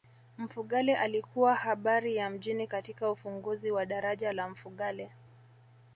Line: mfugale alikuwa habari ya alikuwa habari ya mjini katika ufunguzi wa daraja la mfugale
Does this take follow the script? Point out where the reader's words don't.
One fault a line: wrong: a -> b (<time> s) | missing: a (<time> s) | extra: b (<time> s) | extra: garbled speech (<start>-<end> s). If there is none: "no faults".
missing: alikuwa habari ya (2.3 s)